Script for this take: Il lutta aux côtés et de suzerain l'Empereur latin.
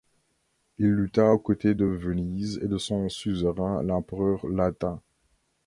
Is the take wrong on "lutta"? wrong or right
right